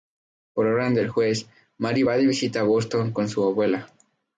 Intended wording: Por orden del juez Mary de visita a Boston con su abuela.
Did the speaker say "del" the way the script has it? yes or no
yes